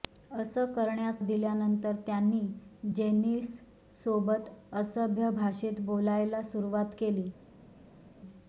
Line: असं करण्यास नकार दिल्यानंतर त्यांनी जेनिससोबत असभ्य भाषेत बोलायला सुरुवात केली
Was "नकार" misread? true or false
true